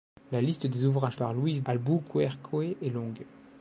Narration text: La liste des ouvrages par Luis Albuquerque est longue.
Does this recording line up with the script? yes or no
yes